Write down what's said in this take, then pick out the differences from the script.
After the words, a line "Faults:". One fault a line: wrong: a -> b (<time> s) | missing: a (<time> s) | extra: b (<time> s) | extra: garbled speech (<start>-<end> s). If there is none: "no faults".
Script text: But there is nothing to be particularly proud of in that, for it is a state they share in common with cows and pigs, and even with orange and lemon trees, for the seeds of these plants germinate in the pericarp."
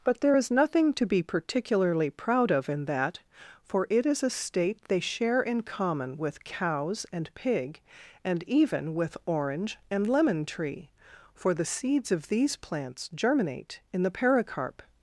But there is nothing to be particularly proud of in that, for it is a state they share in common with cows and pig, and even with orange and lemon tree, for the seeds of these plants germinate in the pericarp."
Faults:
wrong: pigs -> pig (7.3 s)
wrong: trees -> tree (10.4 s)